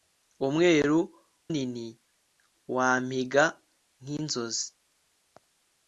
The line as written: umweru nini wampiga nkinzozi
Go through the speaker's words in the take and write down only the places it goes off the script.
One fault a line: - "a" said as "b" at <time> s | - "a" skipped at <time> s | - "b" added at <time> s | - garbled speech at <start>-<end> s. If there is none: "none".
none